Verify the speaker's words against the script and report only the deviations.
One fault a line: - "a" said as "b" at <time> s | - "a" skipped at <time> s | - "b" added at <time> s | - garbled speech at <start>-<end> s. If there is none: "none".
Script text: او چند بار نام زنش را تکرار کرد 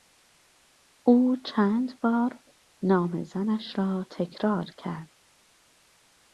none